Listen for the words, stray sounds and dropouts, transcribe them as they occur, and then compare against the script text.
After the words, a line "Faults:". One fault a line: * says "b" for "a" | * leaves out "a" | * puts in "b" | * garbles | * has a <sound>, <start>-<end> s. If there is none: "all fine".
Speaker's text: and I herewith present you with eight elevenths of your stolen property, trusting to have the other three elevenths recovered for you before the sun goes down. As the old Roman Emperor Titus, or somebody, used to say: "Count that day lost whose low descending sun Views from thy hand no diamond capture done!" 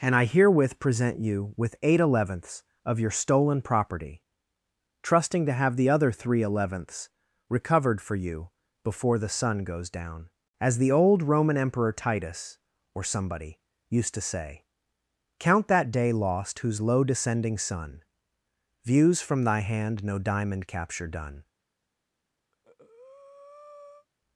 and I herewith present you with eight elevenths of your stolen property, trusting to have the other three elevenths recovered for you before the sun goes down. As the old Roman Emperor Titus, or somebody, used to say: "Count that day lost whose low descending sun Views from thy hand no diamond capture done!"
Faults:
* has a breath, 22.5-24.1 s